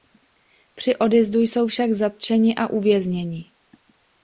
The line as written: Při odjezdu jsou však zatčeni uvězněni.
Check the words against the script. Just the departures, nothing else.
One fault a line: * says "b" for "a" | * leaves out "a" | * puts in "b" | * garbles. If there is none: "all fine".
* puts in "a"